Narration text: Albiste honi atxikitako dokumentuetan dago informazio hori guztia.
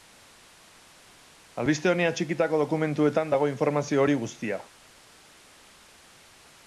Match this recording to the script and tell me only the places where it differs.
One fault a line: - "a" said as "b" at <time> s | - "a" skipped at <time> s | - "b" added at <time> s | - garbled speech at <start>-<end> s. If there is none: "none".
none